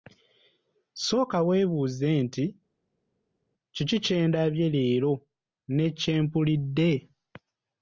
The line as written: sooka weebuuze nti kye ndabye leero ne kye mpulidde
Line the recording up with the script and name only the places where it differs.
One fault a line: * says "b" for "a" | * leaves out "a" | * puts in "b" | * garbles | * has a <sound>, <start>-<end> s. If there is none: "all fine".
* puts in "kiki"